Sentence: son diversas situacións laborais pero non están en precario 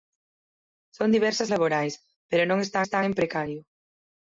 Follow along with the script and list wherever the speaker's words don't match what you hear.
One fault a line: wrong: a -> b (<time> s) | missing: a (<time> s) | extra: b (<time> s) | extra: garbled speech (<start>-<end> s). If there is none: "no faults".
missing: situacións (1.5 s)
extra: están (2.8 s)